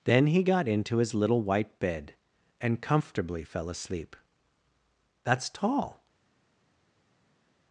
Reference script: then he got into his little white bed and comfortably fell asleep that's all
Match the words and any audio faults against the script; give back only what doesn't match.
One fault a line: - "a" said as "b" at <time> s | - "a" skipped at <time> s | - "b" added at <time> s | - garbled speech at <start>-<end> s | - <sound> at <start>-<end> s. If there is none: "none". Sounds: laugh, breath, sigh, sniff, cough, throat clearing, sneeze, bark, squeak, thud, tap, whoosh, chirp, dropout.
- "all" said as "tall" at 5.5 s